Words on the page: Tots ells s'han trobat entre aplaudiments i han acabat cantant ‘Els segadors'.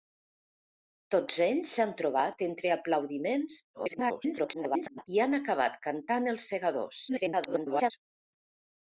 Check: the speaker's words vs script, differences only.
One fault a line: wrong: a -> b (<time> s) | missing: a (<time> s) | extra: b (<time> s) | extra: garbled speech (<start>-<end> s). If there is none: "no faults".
extra: garbled speech (3.7-5.1 s)
extra: garbled speech (7.1-7.9 s)